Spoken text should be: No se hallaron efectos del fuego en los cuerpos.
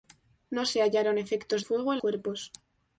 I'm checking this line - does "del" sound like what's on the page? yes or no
no